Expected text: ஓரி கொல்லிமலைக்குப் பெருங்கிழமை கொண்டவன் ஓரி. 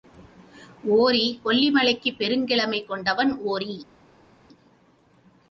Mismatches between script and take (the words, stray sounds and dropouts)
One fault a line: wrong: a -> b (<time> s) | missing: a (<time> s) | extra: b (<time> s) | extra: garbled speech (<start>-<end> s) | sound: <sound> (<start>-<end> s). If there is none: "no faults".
no faults